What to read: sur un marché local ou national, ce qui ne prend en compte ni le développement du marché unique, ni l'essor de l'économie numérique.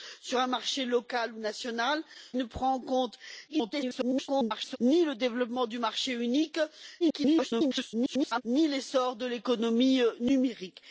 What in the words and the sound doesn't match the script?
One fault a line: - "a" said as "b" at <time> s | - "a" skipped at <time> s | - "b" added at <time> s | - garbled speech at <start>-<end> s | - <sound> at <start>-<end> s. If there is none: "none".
- "ce qui" skipped at 2.0 s
- garbled speech at 3.5-4.8 s
- garbled speech at 7.0-8.4 s